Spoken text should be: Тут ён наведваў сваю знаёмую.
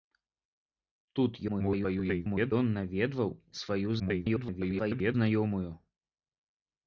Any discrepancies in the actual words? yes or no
yes